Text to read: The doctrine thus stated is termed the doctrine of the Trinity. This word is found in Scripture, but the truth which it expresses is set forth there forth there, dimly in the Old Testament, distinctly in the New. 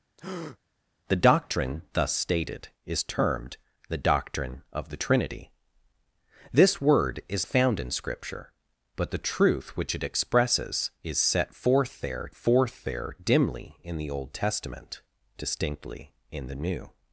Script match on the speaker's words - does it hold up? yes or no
yes